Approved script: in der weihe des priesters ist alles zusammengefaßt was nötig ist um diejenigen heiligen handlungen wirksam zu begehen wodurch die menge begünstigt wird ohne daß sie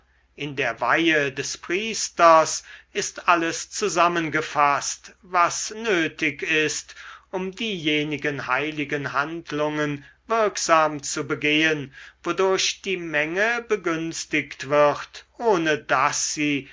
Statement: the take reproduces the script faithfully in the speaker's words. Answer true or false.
true